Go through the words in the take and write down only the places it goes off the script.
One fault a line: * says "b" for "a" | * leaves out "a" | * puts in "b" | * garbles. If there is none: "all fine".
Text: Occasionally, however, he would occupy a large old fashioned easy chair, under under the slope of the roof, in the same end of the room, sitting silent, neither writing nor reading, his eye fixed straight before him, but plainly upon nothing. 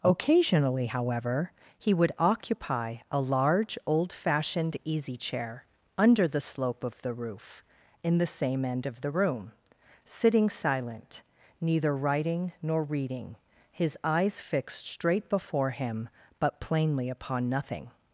* leaves out "under"
* says "eyes" for "eye"